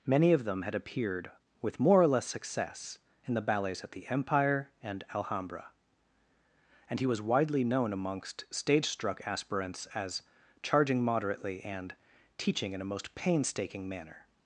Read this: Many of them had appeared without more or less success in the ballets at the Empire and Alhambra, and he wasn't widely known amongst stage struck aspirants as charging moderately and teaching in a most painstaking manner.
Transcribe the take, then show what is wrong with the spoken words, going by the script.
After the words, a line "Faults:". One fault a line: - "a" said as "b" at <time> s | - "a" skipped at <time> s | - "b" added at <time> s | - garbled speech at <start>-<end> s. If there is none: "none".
Many of them had appeared with more or less success in the ballets at the Empire and Alhambra, and he was widely known amongst stage struck aspirants as charging moderately and teaching in a most painstaking manner.
Faults:
- "without" said as "with" at 1.6 s
- "wasn't" said as "was" at 7.0 s